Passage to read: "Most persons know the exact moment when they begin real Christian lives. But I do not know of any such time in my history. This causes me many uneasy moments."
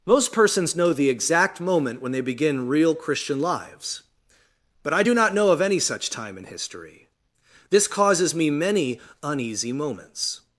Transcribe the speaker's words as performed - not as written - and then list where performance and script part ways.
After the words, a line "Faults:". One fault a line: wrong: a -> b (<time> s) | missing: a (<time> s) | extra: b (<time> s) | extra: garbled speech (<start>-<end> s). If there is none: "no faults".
"Most persons know the exact moment when they begin real Christian lives. But I do not know of any such time in history. This causes me many uneasy moments."
Faults:
missing: my (6.5 s)